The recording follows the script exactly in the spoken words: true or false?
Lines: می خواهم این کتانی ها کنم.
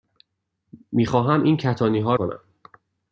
true